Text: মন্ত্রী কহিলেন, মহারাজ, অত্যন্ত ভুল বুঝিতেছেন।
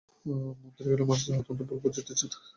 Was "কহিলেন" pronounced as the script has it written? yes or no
yes